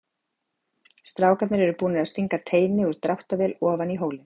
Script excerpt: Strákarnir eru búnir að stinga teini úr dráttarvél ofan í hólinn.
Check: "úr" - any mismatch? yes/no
no